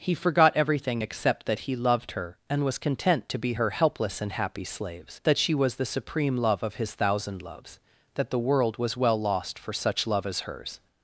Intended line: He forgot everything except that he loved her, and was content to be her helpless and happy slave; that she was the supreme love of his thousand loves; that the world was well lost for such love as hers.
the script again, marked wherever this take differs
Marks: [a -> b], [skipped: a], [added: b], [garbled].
He forgot everything except that he loved her, and was content to be her helpless and happy [slave; -> slaves] that she was the supreme love of his thousand loves; that the world was well lost for such love as hers.